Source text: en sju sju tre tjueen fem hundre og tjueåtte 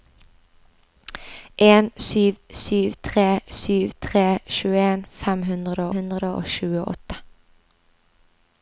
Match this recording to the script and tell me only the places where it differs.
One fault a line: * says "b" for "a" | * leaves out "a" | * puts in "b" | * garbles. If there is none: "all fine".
* puts in "sju tre"
* puts in "hundre"